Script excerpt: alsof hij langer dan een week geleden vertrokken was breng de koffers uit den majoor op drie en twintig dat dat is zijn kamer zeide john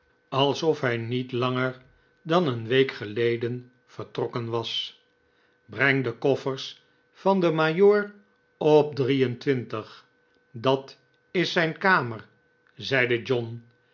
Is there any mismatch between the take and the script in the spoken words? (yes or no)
yes